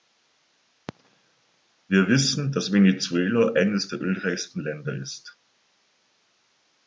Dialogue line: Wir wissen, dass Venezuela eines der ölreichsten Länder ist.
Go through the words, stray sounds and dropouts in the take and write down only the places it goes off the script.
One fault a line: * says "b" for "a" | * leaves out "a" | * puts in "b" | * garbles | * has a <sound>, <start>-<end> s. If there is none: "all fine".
all fine